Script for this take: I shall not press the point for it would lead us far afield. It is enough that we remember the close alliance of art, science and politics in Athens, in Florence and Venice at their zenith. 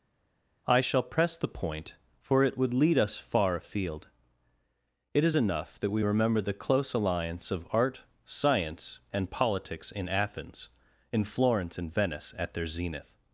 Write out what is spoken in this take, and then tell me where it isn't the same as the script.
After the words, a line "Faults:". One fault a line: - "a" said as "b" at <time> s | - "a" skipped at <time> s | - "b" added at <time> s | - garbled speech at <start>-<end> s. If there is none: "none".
I shall press the point for it would lead us far afield. It is enough that we remember the close alliance of art, science and politics in Athens, in Florence and Venice at their zenith.
Faults:
- "not" skipped at 1.0 s